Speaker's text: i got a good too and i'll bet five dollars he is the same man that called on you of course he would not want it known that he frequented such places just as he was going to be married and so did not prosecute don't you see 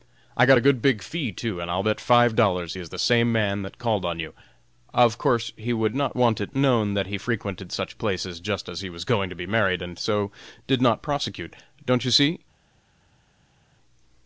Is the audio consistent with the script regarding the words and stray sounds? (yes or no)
no